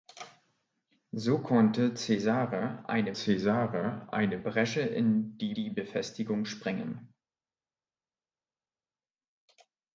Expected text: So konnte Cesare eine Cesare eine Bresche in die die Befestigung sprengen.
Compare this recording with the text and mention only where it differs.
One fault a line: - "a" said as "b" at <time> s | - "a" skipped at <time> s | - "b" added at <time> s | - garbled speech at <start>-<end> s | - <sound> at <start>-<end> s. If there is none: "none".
none